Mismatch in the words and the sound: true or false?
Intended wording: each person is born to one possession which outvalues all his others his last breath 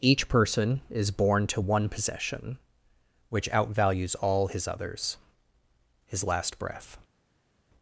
false